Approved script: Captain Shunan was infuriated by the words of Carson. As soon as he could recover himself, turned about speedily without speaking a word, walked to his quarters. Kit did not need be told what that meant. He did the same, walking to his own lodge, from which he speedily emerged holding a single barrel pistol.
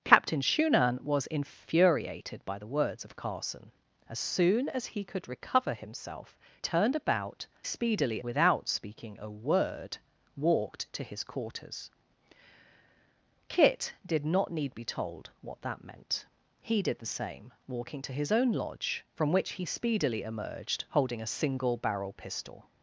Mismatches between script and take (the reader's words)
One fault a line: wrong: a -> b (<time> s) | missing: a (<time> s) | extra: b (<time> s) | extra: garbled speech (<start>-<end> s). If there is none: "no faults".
no faults